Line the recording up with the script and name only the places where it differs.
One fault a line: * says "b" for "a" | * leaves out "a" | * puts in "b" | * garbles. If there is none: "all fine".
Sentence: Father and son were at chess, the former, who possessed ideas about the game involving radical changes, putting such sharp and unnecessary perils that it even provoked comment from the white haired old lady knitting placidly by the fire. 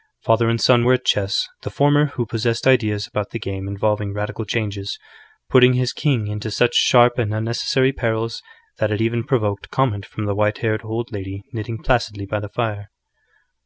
* puts in "his king into"